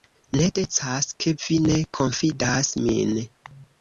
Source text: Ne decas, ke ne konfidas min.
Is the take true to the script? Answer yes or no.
no